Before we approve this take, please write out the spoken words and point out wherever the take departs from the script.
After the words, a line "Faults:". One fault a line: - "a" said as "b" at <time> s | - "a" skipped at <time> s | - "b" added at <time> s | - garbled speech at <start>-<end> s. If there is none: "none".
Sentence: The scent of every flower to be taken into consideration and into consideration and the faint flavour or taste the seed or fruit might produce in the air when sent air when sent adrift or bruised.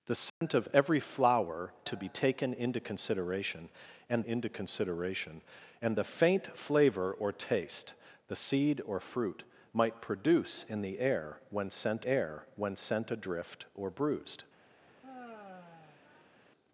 The scent of every flower to be taken into consideration and into consideration and the faint flavour or taste the seed or fruit might produce in the air when sent air when sent adrift or bruised.
Faults:
none